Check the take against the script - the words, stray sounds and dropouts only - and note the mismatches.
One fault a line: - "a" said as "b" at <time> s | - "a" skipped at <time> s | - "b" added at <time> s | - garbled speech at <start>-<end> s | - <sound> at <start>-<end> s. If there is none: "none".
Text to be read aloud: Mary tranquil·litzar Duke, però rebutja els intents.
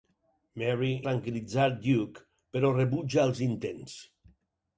none